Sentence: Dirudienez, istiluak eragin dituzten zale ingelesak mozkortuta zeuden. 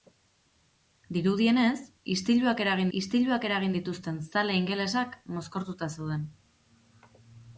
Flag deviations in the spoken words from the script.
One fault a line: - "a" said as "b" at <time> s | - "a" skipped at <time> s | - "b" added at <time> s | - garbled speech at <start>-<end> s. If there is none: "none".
- "istiluak eragin" added at 3.0 s